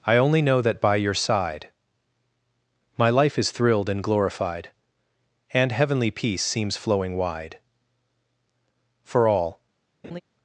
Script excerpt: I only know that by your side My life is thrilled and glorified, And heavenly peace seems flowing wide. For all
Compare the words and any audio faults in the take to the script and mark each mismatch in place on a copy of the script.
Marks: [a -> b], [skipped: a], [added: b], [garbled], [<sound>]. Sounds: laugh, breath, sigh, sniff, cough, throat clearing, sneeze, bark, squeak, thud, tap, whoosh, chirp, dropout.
I only know that by your side My life is thrilled and glorified, And heavenly peace seems flowing wide. For all [laugh]